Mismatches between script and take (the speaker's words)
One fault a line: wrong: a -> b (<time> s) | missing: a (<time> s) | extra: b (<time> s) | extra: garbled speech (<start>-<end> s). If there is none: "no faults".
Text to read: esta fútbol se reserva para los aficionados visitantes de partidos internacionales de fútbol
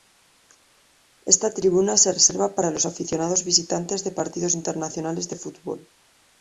wrong: fútbol -> tribuna (1.5 s)